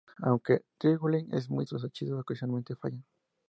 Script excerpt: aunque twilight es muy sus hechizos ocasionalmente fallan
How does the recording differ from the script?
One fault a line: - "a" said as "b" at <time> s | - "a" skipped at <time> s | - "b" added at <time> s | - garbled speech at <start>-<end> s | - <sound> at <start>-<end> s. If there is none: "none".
none